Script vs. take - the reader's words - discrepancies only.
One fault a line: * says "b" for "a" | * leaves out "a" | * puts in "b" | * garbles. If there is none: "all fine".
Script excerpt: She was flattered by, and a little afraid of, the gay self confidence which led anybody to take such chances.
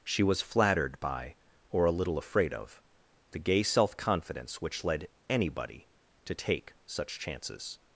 * says "or" for "and"